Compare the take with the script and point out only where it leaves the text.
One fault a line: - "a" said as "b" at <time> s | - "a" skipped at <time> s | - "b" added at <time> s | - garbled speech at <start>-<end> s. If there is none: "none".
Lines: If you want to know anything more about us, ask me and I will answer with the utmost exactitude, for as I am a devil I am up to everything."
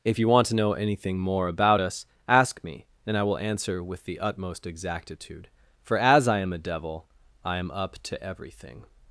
none